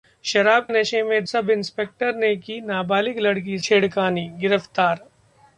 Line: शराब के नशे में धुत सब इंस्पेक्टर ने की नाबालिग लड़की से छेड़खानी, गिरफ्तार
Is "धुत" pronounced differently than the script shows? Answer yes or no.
yes